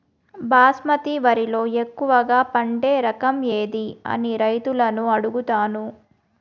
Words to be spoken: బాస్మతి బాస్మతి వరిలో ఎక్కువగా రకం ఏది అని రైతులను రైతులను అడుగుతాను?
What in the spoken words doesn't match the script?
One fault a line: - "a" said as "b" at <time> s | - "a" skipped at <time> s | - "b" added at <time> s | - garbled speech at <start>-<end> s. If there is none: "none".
- "బాస్మతి" skipped at 1.1 s
- "పండే" added at 2.5 s
- "రైతులను" skipped at 5.0 s